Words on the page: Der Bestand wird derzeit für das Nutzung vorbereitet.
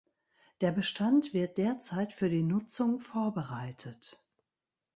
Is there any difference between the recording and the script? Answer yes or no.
yes